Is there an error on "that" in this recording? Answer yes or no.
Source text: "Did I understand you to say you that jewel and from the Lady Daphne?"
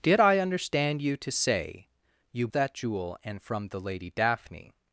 no